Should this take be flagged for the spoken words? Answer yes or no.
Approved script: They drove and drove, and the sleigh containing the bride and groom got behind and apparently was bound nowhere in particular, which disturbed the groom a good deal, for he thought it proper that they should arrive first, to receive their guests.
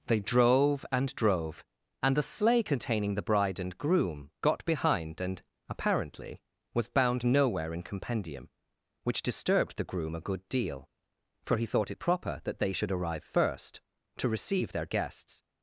yes